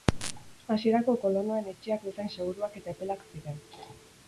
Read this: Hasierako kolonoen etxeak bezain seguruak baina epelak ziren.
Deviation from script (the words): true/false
true